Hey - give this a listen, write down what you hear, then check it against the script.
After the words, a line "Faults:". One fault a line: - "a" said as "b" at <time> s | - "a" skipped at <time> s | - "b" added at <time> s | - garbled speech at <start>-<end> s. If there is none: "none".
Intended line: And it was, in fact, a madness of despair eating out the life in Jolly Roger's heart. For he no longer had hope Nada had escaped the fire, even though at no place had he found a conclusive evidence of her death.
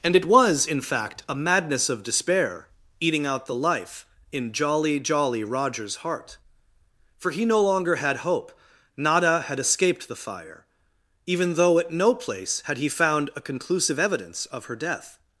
And it was, in fact, a madness of despair eating out the life in Jolly Jolly Roger's heart. For he no longer had hope Nada had escaped the fire, even though at no place had he found a conclusive evidence of her death.
Faults:
- "Jolly" added at 5.0 s